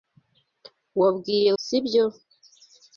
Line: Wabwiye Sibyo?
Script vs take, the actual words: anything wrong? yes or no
no